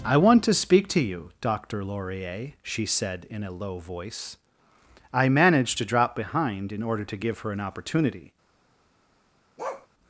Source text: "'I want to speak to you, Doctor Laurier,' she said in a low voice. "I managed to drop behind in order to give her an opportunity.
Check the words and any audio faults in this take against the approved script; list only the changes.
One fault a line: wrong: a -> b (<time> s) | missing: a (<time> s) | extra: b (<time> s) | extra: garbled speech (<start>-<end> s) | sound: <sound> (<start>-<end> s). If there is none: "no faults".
sound: bark (9.6-9.9 s)